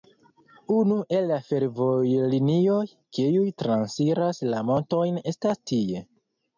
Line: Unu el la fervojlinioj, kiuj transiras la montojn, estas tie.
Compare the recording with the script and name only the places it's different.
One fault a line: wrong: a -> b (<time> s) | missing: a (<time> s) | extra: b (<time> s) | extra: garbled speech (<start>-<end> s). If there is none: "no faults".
no faults